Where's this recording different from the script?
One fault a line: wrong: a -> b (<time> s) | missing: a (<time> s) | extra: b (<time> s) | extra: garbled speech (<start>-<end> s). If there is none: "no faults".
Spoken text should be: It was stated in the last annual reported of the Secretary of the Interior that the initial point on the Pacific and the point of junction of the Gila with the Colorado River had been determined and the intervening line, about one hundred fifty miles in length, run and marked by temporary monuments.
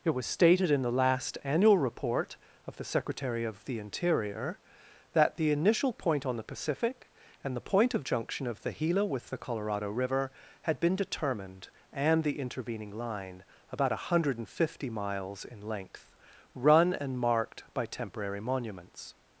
wrong: reported -> report (1.8 s)